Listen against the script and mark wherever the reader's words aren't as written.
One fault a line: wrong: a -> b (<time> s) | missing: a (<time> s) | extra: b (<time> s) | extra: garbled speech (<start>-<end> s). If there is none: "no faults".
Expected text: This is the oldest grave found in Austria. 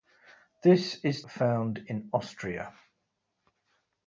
missing: the oldest grave (1.2 s)